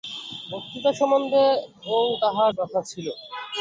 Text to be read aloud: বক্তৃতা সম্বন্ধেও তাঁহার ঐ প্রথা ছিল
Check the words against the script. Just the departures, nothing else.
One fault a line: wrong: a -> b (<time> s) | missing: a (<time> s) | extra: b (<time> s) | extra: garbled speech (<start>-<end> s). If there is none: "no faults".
missing: ঐ (2.5 s)